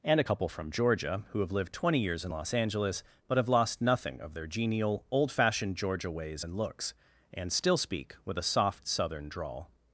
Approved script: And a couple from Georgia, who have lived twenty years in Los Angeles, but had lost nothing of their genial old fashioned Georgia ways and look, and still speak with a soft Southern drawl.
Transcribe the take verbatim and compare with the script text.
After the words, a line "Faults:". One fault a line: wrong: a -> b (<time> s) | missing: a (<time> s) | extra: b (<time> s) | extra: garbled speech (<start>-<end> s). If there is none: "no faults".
And a couple from Georgia, who have lived twenty years in Los Angeles, but have lost nothing of their genial old fashioned Georgia ways and looks, and still speak with a soft Southern drawl.
Faults:
wrong: had -> have (3.4 s)
wrong: look -> looks (6.6 s)